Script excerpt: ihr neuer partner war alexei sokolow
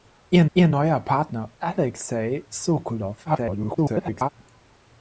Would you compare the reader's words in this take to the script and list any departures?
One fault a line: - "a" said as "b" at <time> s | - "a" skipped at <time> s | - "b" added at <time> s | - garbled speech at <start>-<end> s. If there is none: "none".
- "ihr" added at 0.5 s
- "war" skipped at 1.5 s
- garbled speech at 3.2-4.3 s